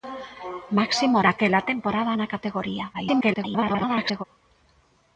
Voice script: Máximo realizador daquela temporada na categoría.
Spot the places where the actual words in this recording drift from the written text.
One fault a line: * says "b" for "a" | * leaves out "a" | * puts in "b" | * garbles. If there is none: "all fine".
* leaves out "realizador"
* garbles